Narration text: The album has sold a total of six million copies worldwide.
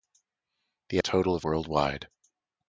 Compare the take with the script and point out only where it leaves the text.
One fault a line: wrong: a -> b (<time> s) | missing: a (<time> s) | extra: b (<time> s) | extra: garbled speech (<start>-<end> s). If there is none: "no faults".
missing: album has sold (1.0 s)
missing: six million copies (1.5 s)